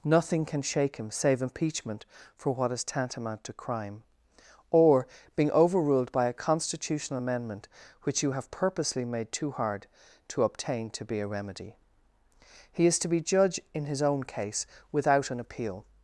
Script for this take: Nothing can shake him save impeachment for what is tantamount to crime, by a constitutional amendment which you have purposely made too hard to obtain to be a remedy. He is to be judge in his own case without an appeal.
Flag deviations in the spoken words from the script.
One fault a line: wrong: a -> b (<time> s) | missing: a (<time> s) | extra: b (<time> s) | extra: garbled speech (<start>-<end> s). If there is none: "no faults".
extra: or being overruled (4.7 s)